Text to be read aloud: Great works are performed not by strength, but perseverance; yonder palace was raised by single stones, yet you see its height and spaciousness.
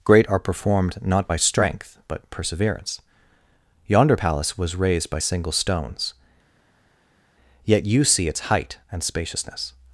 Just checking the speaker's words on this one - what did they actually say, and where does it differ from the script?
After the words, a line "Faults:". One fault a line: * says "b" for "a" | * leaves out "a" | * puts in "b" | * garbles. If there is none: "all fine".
Great are performed not by strength, but perseverance; yonder palace was raised by single stones, yet you see its height and spaciousness.
Faults:
* leaves out "works"